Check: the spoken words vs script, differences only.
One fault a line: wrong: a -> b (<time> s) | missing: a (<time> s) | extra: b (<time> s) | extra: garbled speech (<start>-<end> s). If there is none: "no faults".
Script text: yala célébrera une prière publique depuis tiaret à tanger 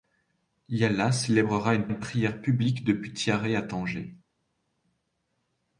extra: une (1.9 s)